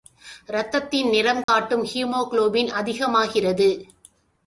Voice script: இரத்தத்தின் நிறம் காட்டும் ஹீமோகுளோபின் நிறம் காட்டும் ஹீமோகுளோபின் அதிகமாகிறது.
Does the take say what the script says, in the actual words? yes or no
no